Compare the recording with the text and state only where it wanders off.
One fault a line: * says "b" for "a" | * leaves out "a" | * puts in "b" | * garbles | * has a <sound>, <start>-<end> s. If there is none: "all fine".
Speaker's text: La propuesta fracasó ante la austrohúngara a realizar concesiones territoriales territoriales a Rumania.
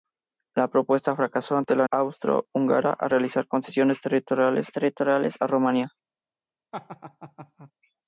* has a laugh, 6.7-7.7 s